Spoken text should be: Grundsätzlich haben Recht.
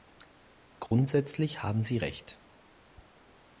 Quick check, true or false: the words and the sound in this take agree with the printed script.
false